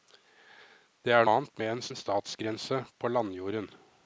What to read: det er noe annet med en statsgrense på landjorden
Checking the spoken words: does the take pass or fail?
fail